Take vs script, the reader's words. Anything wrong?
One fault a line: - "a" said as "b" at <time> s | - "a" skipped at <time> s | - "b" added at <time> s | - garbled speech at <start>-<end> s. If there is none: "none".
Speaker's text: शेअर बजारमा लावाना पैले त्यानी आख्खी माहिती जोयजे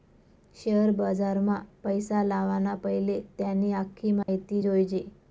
- "पैसा" added at 1.8 s